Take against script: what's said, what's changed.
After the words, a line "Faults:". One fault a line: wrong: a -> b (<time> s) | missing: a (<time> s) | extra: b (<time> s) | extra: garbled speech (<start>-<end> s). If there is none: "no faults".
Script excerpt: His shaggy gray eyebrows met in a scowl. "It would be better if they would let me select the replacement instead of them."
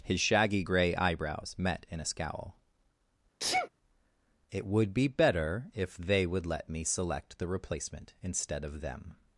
His shaggy gray eyebrows met in a scowl. "It would be better if they would let me select the replacement instead of them."
Faults:
no faults